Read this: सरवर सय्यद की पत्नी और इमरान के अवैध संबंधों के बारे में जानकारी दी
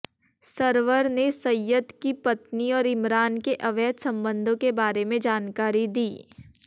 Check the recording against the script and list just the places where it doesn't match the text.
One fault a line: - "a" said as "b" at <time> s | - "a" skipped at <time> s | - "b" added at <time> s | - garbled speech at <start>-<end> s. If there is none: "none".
- "ने" added at 1.1 s